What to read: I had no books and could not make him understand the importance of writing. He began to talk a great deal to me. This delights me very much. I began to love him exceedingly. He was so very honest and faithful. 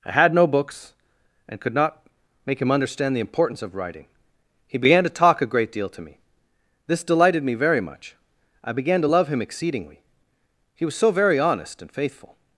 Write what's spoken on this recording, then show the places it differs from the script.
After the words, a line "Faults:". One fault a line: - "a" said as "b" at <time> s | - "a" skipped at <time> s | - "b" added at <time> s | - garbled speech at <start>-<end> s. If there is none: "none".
I had no books and could not make him understand the importance of writing. He began to talk a great deal to me. This delighted me very much. I began to love him exceedingly. He was so very honest and faithful.
Faults:
- "delights" said as "delighted" at 7.0 s